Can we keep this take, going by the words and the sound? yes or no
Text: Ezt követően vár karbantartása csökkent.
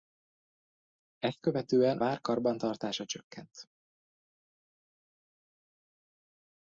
yes